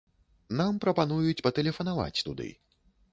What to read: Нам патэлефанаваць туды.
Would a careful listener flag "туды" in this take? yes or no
no